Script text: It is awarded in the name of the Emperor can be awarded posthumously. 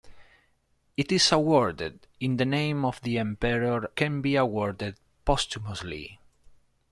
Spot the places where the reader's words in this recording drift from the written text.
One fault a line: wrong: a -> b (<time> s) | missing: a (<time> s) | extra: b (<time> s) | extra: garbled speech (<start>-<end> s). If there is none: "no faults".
no faults